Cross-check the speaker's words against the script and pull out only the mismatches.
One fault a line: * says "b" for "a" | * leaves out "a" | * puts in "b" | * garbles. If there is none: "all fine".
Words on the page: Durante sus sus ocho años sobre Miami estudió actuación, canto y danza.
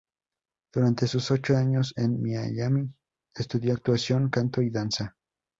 * leaves out "sus"
* says "en" for "sobre"